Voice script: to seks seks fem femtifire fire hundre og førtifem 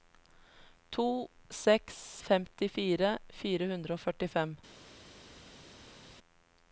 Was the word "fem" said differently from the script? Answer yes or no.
yes